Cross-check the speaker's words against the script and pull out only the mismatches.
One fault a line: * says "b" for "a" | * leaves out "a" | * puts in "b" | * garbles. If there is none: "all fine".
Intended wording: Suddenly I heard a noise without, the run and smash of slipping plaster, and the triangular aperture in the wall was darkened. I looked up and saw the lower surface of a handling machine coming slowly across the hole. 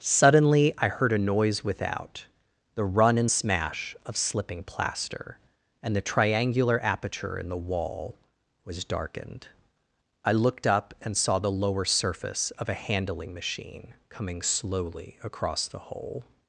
all fine